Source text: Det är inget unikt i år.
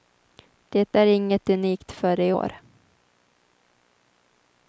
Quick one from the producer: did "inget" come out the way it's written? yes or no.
yes